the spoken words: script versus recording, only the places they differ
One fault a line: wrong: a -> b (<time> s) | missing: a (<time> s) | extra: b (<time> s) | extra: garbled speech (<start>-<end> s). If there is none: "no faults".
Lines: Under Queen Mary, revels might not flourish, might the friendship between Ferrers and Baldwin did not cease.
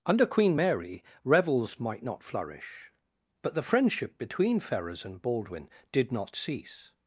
wrong: might -> but (3.4 s)